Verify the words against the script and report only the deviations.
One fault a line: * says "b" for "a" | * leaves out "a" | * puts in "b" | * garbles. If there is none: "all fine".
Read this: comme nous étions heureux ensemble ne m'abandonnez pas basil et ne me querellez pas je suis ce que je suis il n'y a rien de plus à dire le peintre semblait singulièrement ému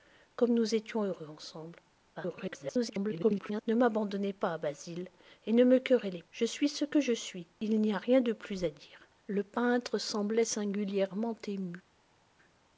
* garbles
* leaves out "pas"